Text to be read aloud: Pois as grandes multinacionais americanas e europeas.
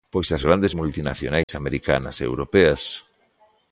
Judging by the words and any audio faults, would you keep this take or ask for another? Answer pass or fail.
fail